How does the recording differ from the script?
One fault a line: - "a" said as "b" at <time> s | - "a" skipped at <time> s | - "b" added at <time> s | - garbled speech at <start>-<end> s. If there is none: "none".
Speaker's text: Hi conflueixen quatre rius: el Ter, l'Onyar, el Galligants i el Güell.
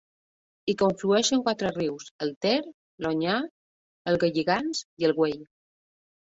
none